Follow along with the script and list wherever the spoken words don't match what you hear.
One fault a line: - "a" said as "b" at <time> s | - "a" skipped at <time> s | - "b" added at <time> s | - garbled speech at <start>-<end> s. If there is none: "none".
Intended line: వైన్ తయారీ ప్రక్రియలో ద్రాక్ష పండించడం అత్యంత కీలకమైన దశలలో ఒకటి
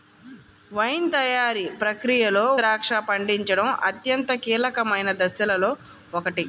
none